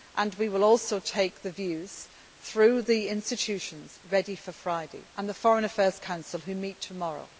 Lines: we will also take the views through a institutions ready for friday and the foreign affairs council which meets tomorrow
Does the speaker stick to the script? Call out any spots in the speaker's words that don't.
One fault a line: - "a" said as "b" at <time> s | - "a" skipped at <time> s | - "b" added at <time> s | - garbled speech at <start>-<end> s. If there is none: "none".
- "a" said as "the" at 2.8 s